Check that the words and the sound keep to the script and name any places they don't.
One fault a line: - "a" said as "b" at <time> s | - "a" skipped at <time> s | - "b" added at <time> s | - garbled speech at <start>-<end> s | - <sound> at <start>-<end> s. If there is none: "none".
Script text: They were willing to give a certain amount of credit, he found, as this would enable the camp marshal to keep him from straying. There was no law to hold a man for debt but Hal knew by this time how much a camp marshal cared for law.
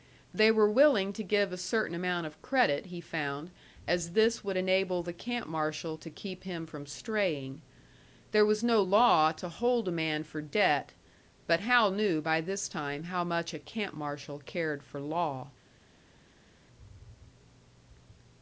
none